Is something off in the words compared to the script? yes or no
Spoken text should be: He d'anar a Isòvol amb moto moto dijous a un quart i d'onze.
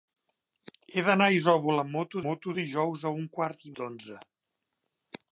no